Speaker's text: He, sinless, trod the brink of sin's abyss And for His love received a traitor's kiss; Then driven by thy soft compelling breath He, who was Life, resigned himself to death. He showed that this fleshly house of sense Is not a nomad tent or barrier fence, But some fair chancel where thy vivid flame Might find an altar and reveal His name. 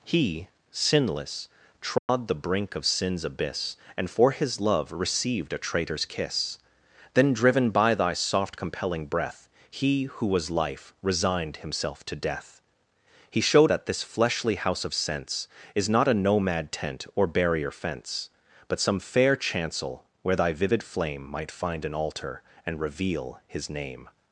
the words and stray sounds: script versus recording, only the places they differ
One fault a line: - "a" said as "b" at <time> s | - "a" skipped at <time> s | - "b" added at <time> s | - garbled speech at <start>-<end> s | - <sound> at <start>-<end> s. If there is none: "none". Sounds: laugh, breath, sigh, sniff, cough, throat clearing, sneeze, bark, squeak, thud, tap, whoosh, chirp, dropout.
- dropout at 2.0-2.1 s